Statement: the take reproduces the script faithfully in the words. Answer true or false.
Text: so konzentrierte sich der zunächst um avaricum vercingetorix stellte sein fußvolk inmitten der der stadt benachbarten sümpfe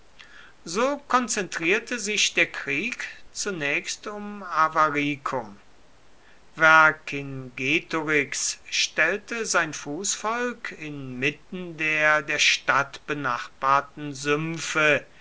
false